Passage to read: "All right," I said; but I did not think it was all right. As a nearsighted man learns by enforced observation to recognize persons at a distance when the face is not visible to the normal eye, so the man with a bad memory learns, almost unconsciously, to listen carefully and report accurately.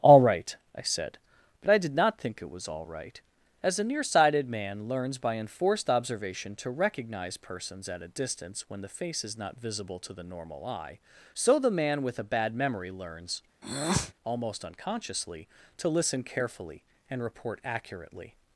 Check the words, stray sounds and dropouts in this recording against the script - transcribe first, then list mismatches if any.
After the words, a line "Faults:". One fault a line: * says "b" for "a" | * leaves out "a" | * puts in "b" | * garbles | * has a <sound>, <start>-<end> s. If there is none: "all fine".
"All right," I said; but I did not think it was all right. As a nearsighted man learns by enforced observation to recognize persons at a distance when the face is not visible to the normal eye, so the man with a bad memory learns, almost unconsciously, to listen carefully and report accurately.
Faults:
* has a breath, 13.6-14.1 s